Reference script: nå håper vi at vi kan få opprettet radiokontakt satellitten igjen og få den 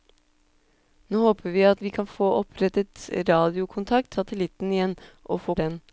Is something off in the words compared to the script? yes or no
no